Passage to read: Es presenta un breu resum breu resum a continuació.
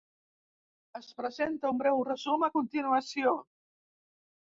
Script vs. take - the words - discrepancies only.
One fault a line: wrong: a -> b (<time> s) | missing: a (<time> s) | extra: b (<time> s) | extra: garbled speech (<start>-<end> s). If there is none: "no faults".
missing: breu resum (2.5 s)